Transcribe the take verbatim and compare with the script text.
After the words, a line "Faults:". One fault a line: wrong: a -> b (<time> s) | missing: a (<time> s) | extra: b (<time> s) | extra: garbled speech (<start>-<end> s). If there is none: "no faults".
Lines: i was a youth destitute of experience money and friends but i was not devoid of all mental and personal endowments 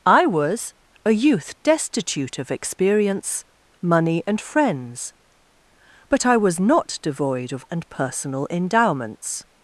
i was a youth destitute of experience money and friends but i was not devoid of and personal endowments
Faults:
missing: all mental (7.7 s)